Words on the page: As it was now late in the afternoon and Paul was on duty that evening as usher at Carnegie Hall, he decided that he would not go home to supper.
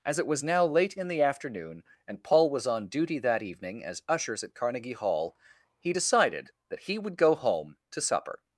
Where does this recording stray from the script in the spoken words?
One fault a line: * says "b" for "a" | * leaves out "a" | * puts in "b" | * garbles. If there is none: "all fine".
* says "ushers" for "usher"
* leaves out "not"